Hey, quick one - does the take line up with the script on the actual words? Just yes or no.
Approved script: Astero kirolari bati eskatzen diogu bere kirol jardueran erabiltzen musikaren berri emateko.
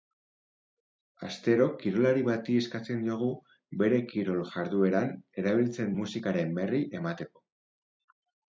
yes